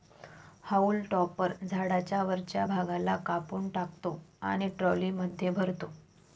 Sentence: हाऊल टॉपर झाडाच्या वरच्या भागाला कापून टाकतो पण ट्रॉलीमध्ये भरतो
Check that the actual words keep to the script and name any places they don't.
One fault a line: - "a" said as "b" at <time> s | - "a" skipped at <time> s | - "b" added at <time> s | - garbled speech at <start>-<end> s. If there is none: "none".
- "पण" said as "आणि" at 4.4 s